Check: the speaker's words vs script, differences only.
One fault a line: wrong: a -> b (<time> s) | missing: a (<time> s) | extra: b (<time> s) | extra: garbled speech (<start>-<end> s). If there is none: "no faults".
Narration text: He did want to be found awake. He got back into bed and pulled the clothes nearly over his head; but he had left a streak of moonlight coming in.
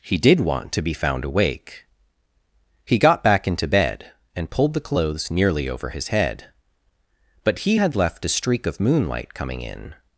no faults